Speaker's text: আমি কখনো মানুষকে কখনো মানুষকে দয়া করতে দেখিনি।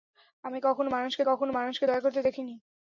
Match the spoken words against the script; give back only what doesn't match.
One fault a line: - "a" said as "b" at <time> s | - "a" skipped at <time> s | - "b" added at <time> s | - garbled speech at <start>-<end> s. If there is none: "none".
none